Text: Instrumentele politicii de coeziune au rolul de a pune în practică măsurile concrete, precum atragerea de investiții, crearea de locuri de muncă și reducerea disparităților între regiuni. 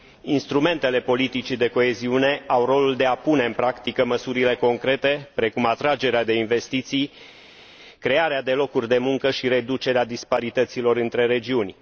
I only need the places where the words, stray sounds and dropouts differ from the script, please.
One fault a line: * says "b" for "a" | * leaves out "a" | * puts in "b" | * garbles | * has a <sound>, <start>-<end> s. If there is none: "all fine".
all fine